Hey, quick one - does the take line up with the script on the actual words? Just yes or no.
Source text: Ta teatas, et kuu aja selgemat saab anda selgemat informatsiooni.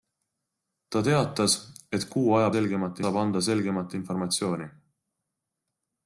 yes